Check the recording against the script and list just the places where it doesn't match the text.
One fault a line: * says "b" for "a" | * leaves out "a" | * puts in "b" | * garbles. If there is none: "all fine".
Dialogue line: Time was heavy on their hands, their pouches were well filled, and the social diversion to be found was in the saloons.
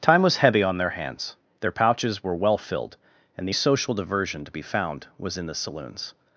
all fine